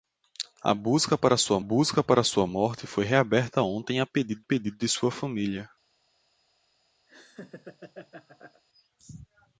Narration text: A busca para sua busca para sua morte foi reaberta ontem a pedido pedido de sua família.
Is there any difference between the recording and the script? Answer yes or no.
no